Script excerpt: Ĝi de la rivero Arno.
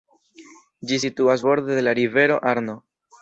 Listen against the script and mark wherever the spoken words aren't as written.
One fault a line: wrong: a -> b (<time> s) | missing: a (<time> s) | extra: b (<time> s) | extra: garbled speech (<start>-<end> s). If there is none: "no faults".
extra: situas borde (1.0 s)